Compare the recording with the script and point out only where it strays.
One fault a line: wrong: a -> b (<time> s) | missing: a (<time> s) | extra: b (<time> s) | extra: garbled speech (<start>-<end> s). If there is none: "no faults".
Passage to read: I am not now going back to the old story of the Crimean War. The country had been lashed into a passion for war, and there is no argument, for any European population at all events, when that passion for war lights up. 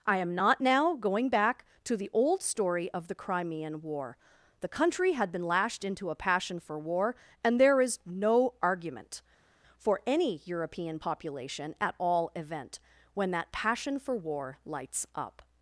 wrong: events -> event (12.3 s)